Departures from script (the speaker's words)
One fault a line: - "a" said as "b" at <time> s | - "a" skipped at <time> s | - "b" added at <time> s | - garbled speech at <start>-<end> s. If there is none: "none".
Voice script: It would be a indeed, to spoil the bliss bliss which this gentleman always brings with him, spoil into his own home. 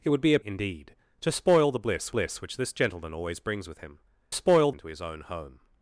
none